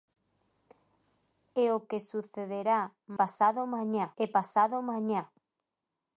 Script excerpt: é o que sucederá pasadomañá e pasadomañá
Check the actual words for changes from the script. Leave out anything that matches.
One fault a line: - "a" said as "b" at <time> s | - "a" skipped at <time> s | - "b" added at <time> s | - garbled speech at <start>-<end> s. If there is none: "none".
none